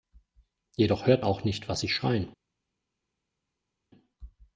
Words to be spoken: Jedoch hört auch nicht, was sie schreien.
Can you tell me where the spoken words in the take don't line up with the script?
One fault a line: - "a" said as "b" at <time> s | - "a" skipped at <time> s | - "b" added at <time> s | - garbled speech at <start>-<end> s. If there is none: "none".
none